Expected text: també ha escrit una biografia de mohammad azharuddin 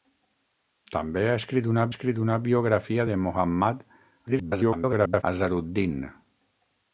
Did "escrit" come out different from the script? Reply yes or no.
no